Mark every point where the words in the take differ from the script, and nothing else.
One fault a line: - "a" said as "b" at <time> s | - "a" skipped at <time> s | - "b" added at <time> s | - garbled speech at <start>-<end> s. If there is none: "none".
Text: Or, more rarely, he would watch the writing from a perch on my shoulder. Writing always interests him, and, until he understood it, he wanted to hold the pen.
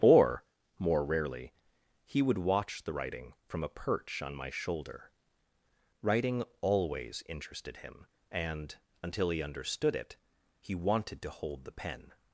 - "interests" said as "interested" at 7.3 s